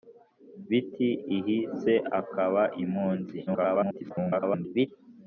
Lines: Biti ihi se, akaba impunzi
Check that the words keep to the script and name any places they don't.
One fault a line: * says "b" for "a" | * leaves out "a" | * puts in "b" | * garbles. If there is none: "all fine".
* garbles